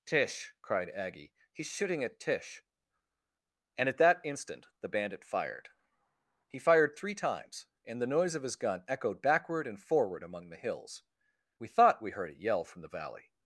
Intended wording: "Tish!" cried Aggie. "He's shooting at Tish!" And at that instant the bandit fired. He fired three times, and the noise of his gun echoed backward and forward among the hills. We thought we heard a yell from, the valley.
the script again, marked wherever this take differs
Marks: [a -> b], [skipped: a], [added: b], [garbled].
"Tish!" cried Aggie. "He's shooting at Tish!" And at that instant the bandit fired. He fired three times, and the noise of his gun echoed backward and forward among the hills. We thought we heard a yell from, the valley.